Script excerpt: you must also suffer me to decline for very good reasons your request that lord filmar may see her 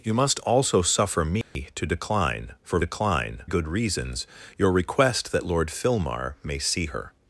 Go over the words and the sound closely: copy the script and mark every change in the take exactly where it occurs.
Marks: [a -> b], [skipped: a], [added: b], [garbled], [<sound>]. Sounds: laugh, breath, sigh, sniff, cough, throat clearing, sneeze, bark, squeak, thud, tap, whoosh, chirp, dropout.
you must also suffer me [dropout] to decline for [very -> decline] good reasons your request that lord filmar may see her